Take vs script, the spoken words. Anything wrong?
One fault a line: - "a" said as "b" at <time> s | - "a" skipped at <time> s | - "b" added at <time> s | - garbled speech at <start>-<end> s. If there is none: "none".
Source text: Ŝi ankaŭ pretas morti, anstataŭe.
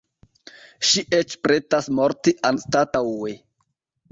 - "ankaŭ" said as "eĉ" at 1.2 s